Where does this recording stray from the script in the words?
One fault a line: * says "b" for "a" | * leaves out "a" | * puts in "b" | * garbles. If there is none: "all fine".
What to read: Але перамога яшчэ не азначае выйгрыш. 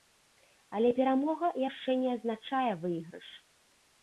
all fine